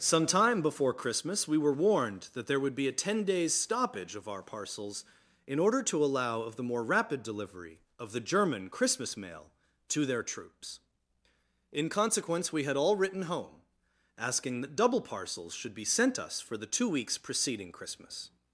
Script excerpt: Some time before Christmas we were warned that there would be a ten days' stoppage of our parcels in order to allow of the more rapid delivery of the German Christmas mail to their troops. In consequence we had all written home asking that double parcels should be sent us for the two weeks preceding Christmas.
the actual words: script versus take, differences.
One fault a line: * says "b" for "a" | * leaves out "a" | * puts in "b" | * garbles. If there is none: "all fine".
all fine